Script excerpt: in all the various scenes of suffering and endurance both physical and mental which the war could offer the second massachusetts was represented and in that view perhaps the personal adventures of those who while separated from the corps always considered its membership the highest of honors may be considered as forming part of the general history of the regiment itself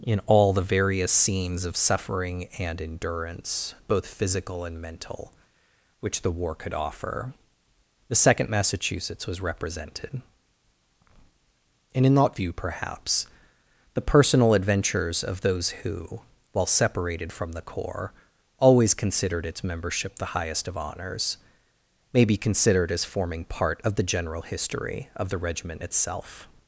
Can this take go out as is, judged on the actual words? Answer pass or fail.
pass